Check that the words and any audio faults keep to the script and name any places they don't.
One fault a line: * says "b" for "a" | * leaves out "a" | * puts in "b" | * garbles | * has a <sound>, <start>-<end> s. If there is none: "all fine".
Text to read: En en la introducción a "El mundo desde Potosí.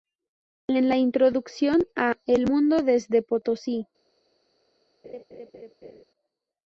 * leaves out "en"
* has a laugh, 5.0-6.0 s